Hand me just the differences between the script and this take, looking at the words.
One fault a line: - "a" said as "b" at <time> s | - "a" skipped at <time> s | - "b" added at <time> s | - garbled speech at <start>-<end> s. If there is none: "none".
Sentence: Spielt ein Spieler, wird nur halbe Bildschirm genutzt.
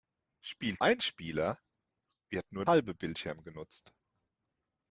none